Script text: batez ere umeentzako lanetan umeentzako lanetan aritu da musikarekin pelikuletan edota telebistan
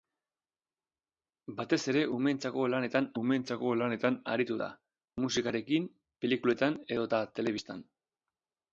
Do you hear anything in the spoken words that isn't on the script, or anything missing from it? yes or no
no